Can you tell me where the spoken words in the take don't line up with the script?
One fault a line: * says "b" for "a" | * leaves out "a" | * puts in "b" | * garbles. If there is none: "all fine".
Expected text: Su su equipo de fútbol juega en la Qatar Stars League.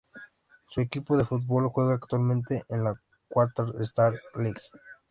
* leaves out "su"
* puts in "actualmente"